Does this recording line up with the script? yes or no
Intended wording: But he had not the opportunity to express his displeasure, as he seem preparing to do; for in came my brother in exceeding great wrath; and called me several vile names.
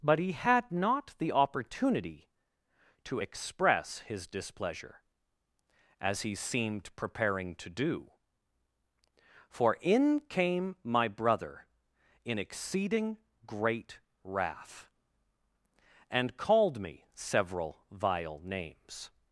no